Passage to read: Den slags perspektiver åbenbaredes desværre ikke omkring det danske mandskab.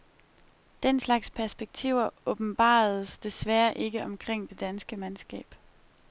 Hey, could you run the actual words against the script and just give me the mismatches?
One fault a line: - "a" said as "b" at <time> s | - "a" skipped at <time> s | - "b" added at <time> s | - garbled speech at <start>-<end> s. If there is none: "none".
none